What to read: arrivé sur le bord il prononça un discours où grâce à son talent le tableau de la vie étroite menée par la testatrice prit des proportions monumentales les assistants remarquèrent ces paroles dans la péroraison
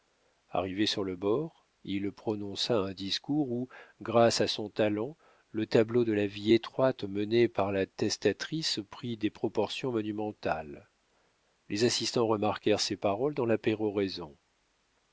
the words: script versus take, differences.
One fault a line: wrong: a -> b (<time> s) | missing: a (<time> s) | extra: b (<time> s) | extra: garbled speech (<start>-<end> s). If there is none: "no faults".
no faults